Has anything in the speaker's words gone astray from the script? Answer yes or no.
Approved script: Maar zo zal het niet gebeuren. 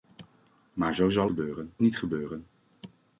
yes